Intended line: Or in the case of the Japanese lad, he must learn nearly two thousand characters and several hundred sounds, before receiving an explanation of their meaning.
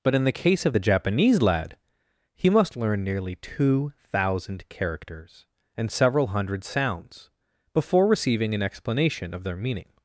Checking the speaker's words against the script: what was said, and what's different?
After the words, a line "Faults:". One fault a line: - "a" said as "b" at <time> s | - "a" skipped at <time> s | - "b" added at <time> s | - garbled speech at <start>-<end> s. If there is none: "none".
But in the case of the Japanese lad, he must learn nearly two thousand characters and several hundred sounds, before receiving an explanation of their meaning.
Faults:
- "Or" said as "But" at 0.0 s